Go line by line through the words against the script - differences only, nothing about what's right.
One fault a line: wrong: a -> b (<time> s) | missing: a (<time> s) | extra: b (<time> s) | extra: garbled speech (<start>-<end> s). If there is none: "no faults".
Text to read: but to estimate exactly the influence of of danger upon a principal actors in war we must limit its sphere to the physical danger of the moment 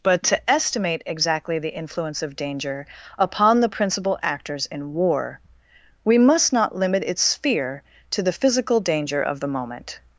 missing: of (2.4 s)
wrong: a -> the (3.6 s)
extra: not (6.5 s)